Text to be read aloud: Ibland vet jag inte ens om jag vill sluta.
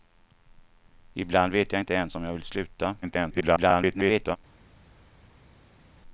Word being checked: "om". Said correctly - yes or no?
yes